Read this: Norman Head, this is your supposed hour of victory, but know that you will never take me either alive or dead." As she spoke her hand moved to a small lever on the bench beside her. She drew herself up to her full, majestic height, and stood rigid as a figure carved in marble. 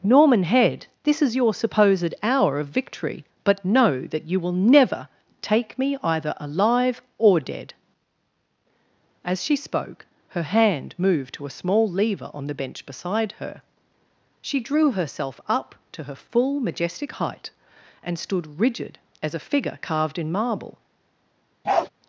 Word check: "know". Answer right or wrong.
right